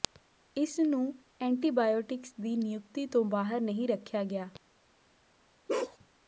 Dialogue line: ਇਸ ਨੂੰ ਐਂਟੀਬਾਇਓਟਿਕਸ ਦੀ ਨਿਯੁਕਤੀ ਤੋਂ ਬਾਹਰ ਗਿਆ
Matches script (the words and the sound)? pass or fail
fail